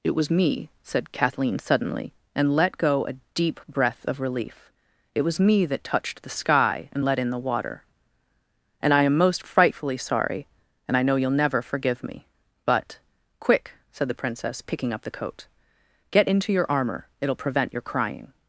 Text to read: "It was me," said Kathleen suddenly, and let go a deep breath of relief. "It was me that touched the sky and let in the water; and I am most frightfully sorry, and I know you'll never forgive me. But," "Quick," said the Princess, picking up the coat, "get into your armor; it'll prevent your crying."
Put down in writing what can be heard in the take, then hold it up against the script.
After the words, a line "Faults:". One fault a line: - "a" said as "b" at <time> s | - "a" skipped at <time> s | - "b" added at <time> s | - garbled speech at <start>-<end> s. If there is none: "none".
"It was me," said Kathleen suddenly, and let go a deep breath of relief. "It was me that touched the sky and let in the water; and I am most frightfully sorry, and I know you'll never forgive me. But," "Quick," said the Princess, picking up the coat, "get into your armor; it'll prevent your crying."
Faults:
none